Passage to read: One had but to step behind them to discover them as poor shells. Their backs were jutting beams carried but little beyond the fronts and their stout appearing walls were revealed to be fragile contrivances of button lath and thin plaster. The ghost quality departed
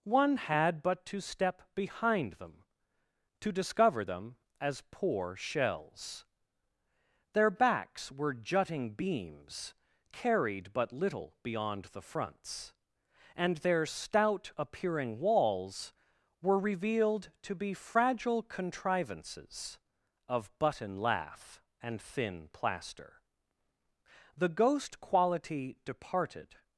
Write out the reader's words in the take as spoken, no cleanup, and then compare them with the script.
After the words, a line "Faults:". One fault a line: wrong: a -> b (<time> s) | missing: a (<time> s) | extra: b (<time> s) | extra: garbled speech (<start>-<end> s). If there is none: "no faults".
One had but to step behind them to discover them as poor shells. Their backs were jutting beams carried but little beyond the fronts and their stout appearing walls were revealed to be fragile contrivances of button lath and thin plaster. The ghost quality departed
Faults:
no faults